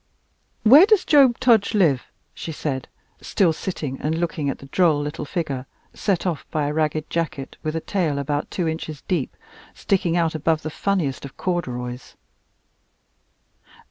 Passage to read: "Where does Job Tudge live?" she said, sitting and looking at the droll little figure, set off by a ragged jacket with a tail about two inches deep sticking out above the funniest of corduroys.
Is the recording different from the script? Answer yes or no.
yes